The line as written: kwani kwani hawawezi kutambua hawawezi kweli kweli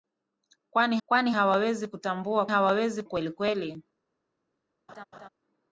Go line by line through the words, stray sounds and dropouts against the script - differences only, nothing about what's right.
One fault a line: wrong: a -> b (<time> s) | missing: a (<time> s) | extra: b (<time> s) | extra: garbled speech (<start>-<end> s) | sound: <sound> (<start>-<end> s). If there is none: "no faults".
sound: laugh (4.9-5.3 s)